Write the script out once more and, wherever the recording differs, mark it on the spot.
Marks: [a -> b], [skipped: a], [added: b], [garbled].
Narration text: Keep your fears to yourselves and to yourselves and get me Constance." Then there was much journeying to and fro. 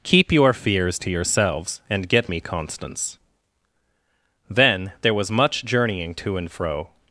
Keep your fears to yourselves and [skipped: to yourselves and] get me Constance." Then there was much journeying to and fro.